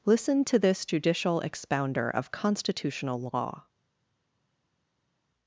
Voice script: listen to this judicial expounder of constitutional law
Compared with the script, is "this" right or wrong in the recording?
right